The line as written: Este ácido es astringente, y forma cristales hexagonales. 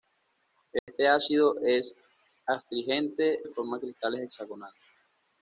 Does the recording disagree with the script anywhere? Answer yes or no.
no